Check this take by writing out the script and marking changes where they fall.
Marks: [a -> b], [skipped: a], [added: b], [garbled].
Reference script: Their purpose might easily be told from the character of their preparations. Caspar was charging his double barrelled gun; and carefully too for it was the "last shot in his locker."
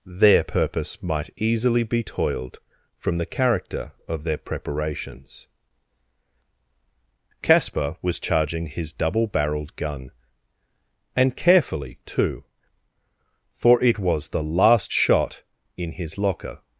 Their purpose might easily be [told -> toiled] from the character of their preparations. Caspar was charging his double barrelled gun; and carefully too for it was the "last shot in his locker."